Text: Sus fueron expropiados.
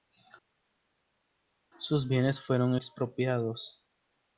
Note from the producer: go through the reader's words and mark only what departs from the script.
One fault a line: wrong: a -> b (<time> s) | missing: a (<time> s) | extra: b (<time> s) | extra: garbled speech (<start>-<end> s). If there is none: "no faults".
extra: bienes (2.1 s)